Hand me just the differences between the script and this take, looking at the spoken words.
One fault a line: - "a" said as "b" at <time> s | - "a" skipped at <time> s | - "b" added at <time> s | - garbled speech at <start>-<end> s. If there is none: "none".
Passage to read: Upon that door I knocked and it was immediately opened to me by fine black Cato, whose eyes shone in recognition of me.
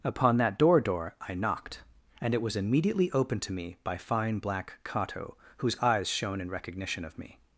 - "door" added at 0.8 s